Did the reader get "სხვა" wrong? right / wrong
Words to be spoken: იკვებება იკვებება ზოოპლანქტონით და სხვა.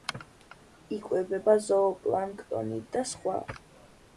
right